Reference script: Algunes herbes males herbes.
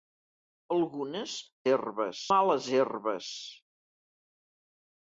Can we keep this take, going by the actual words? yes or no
yes